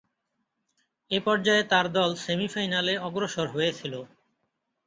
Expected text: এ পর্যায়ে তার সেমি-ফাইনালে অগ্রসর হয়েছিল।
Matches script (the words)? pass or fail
fail